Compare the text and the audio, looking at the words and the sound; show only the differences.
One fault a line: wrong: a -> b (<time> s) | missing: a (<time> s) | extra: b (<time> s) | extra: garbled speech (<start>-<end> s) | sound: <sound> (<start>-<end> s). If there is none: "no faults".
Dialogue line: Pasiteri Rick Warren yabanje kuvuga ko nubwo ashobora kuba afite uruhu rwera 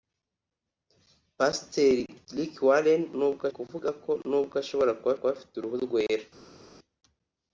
wrong: yabanje -> nubwo (3.2 s)
extra: kuba (5.2 s)